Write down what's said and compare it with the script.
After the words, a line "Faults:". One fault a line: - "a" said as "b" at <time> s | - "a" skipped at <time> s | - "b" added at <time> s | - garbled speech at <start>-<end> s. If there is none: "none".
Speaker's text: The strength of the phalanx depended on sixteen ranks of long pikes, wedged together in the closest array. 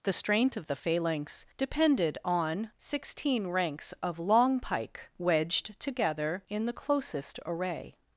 The strength of the phalanx depended on sixteen ranks of long pike, wedged together in the closest array.
Faults:
- "pikes" said as "pike" at 4.6 s